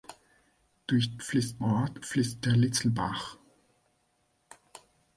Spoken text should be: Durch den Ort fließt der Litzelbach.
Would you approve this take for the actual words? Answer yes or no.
no